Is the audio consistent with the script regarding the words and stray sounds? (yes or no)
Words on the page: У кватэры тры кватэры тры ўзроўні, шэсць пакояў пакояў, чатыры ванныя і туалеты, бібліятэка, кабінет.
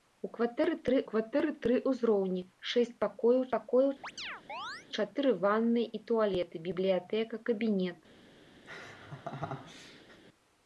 no